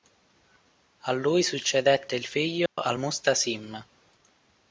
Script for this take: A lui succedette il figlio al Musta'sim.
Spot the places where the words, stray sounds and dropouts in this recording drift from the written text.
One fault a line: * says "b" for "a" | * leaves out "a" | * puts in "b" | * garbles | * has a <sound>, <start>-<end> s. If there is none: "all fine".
* has a dropout, 2.7-2.8 s